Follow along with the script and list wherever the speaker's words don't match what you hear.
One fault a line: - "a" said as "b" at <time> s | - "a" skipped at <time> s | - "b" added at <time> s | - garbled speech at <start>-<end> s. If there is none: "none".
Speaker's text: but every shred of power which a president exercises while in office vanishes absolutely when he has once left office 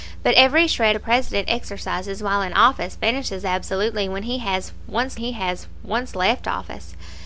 - "of power which" skipped at 1.0 s
- "he has once" added at 5.2 s